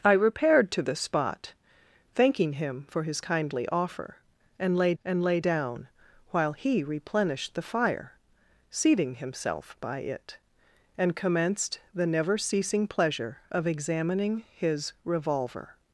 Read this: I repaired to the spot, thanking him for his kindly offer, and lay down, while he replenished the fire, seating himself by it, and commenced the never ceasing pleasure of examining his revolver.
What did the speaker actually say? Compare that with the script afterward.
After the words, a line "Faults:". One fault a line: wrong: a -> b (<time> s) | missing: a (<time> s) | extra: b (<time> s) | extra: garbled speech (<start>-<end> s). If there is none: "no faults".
I repaired to the spot, thanking him for his kindly offer, and lay and lay down, while he replenished the fire, seating himself by it, and commenced the never ceasing pleasure of examining his revolver.
Faults:
extra: and lay (5.0 s)